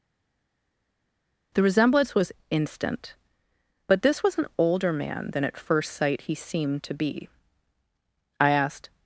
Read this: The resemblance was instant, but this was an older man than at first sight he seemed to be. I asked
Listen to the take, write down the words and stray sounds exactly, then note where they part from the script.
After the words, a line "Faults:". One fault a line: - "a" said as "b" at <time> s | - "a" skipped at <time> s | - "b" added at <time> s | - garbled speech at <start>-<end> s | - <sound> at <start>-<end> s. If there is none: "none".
The resemblance was instant, but this was an older man than at first sight he seemed to be. I asked
Faults:
none